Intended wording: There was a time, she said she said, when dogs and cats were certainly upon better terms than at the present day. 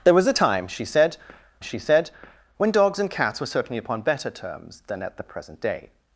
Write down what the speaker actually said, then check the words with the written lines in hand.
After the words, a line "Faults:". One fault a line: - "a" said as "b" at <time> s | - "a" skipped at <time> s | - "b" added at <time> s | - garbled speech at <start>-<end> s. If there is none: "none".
There was a time, she said she said, when dogs and cats were certainly upon better terms than at the present day.
Faults:
none